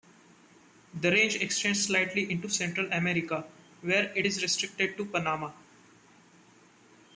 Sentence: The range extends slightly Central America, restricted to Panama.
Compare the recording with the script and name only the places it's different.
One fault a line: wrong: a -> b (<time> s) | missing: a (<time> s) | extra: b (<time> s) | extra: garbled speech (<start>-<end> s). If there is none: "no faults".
extra: into (2.3 s)
extra: where it is (3.8 s)